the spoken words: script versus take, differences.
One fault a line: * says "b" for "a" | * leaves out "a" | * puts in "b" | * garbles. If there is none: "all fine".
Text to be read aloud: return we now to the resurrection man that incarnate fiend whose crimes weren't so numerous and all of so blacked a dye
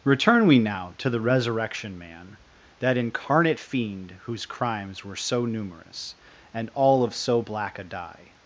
* says "were" for "weren't"
* says "black" for "blacked"